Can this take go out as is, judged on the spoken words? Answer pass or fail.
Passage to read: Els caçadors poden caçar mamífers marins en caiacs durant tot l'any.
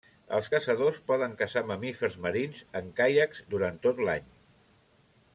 pass